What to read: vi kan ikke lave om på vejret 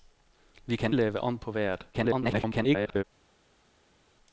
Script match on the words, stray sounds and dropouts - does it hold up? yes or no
no